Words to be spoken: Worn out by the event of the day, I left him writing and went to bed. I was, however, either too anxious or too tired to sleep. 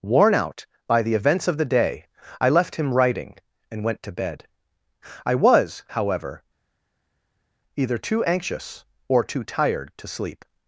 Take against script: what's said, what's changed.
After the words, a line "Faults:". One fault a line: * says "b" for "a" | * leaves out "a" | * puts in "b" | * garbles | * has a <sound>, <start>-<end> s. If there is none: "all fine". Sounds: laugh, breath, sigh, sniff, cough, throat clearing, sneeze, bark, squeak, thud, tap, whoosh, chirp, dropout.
Worn out by the events of the day, I left him writing and went to bed. I was, however, either too anxious or too tired to sleep.
Faults:
* says "events" for "event"